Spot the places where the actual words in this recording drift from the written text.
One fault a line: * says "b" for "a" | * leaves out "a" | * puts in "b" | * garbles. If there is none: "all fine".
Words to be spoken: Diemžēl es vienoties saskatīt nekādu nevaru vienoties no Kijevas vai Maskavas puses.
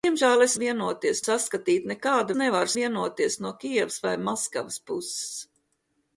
all fine